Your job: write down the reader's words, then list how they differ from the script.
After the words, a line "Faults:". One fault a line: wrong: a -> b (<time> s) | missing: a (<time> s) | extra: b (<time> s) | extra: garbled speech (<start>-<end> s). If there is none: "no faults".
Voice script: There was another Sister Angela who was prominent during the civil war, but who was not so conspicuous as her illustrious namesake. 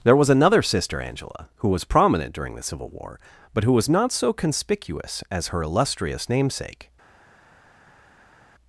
There was another Sister Angela who was prominent during the civil war, but who was not so conspicuous as her illustrious namesake.
Faults:
no faults